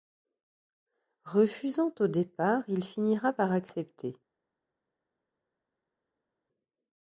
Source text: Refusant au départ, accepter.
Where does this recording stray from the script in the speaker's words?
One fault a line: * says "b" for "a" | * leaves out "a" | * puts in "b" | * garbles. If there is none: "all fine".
* puts in "il finira par"